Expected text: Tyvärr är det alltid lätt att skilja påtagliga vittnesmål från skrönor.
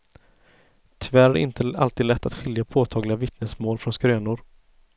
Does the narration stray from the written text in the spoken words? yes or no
yes